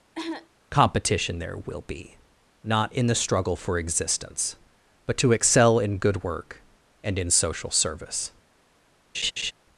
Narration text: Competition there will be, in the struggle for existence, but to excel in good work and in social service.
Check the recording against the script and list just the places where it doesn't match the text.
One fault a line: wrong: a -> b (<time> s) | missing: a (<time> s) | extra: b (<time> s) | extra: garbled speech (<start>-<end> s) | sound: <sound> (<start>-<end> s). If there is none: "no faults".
sound: cough (0.1-0.5 s)
extra: not (2.6 s)
sound: laugh (9.1-9.5 s)